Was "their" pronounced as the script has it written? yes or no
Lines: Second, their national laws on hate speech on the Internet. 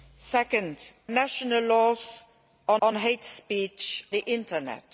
no